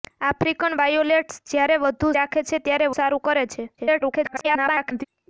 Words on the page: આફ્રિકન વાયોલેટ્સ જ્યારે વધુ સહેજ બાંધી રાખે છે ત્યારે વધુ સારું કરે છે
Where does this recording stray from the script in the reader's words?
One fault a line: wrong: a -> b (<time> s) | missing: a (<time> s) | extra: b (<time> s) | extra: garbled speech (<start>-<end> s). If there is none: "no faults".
missing: સહેજ બાંધી (2.1 s)
missing: વધુ (2.9 s)
extra: garbled speech (3.8-5.0 s)